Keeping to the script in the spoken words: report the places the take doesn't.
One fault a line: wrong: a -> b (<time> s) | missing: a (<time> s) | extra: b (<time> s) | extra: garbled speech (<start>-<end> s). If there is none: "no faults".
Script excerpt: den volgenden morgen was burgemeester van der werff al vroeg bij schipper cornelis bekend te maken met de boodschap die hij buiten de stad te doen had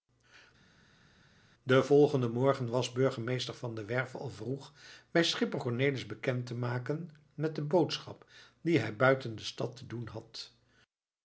no faults